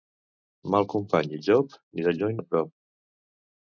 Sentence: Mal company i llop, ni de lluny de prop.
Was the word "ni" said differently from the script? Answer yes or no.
no